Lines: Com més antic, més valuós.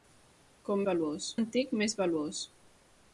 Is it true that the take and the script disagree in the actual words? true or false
true